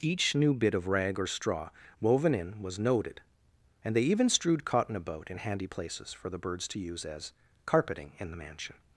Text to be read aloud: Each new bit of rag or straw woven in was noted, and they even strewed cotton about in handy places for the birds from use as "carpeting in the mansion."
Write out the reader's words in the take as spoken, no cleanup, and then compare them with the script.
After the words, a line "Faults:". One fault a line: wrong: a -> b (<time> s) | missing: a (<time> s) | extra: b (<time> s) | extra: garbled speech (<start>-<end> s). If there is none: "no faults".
Each new bit of rag or straw woven in was noted, and they even strewed cotton about in handy places for the birds to use as "carpeting in the mansion."
Faults:
wrong: from -> to (6.7 s)